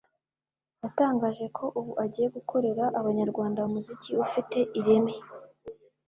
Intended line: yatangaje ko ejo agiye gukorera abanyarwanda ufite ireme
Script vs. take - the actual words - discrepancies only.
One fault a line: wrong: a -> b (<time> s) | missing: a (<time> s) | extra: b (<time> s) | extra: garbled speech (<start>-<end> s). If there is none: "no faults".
wrong: ejo -> ubu (1.8 s)
extra: umuziki (3.7 s)